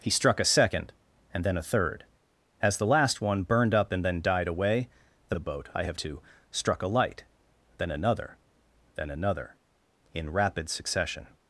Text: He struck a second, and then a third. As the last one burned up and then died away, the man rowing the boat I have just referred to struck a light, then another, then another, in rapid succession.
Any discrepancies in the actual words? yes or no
yes